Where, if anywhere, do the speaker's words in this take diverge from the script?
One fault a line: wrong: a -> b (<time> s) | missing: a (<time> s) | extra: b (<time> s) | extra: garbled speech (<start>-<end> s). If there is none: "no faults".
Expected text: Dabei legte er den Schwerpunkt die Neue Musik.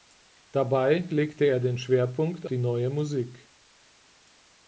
no faults